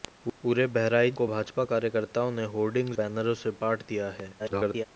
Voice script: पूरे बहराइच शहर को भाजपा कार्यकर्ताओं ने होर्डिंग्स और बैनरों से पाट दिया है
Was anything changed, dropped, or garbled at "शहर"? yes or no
yes